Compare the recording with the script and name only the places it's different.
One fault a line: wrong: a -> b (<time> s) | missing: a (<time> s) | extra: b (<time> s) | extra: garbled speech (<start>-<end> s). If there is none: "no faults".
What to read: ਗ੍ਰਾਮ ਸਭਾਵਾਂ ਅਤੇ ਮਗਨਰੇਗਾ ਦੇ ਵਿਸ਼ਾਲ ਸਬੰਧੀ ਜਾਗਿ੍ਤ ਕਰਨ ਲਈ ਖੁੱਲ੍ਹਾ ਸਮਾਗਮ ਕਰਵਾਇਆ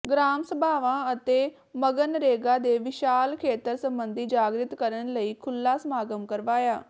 extra: ਖੇਤਰ (3.4 s)